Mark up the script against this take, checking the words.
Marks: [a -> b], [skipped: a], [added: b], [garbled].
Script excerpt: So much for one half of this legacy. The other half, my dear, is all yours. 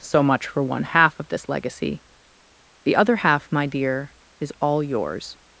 So much for one half of this legacy. The other half, my dear, is all yours.